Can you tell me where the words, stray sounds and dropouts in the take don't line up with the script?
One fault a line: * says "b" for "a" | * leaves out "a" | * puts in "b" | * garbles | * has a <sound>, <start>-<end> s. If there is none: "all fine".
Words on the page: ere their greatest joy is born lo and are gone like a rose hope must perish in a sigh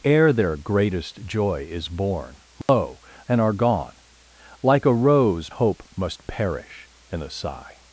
* has a dropout, 2.6-2.7 s